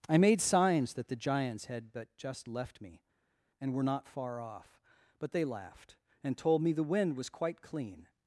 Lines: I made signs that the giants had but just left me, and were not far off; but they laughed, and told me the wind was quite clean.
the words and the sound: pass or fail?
pass